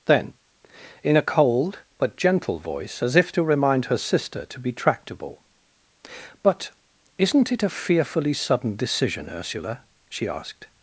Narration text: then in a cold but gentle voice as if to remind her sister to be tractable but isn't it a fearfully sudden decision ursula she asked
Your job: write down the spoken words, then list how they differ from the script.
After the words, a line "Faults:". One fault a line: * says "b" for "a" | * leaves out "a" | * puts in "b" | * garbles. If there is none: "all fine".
then in a cold but gentle voice as if to remind her sister to be tractable but isn't it a fearfully sudden decision ursula she asked
Faults:
all fine